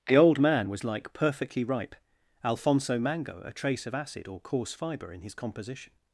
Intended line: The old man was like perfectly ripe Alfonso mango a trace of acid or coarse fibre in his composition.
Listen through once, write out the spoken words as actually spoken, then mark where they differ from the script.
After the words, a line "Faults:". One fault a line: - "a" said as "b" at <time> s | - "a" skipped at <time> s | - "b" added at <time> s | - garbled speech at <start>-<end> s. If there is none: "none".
The old man was like perfectly ripe Alfonso mango a trace of acid or coarse fibre in his composition.
Faults:
none